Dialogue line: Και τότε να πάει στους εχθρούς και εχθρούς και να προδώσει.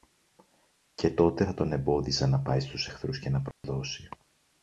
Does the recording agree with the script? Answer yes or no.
no